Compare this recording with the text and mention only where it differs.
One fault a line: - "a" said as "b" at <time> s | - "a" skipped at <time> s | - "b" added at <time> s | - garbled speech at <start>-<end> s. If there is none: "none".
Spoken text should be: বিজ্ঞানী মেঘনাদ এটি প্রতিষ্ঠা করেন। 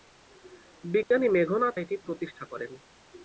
none